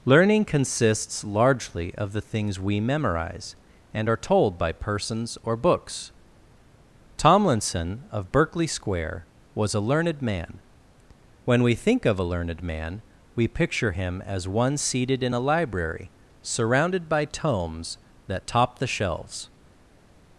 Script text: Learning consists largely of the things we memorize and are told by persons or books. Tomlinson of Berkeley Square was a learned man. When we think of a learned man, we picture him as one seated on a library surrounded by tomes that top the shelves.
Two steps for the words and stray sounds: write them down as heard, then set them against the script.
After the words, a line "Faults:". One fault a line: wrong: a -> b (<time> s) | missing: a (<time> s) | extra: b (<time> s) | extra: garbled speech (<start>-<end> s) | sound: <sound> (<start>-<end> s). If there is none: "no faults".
Learning consists largely of the things we memorize and are told by persons or books. Tomlinson of Berkeley Square was a learned man. When we think of a learned man, we picture him as one seated in a library surrounded by tomes that top the shelves.
Faults:
wrong: on -> in (15.2 s)